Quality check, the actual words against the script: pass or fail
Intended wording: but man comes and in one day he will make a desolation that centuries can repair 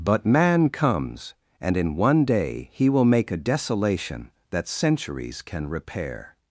pass